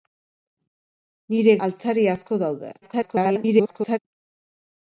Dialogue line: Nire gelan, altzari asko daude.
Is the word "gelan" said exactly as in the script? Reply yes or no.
no